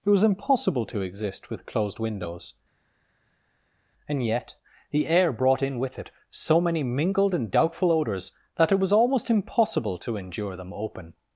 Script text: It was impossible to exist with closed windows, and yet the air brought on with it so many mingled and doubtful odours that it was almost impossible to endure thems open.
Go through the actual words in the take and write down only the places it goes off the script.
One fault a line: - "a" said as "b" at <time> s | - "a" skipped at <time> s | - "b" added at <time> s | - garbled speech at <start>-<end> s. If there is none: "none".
- "on" said as "in" at 5.6 s
- "thems" said as "them" at 10.5 s